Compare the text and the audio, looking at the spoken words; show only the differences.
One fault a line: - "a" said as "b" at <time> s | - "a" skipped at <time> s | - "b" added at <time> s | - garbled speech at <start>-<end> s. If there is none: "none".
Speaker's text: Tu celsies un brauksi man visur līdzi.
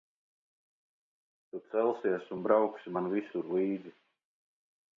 none